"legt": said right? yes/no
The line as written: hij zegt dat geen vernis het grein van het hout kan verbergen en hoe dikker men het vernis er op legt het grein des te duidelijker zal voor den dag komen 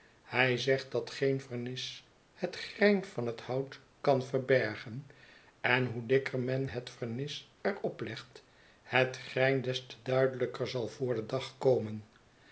yes